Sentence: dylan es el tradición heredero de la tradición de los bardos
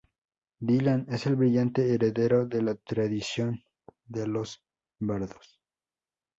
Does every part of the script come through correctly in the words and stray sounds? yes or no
no